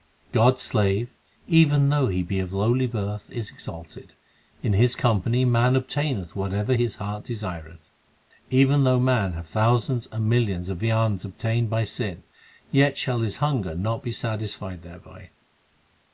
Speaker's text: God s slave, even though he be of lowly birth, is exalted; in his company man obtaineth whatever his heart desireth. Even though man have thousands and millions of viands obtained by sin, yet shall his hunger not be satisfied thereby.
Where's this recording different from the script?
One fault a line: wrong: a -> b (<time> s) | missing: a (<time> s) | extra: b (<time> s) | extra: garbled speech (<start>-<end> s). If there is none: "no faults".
no faults